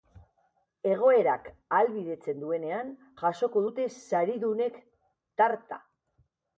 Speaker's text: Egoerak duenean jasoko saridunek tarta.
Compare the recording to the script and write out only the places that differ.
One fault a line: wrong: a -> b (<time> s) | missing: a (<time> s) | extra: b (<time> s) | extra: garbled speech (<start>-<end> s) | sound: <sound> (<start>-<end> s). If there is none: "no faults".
extra: ahalbidetzen (1.5 s)
extra: dute (3.7 s)